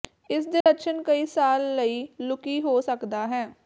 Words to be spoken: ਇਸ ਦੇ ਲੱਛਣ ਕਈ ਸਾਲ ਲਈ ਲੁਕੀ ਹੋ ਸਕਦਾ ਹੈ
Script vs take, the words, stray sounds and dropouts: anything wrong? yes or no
yes